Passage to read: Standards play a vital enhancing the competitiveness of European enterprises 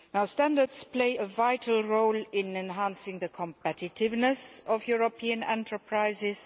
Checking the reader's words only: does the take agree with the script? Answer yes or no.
no